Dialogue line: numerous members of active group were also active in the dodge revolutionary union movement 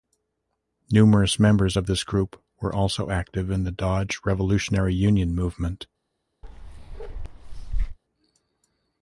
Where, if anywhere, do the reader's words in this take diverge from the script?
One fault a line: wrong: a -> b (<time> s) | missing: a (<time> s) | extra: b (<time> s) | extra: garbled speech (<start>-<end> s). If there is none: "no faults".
wrong: active -> this (1.9 s)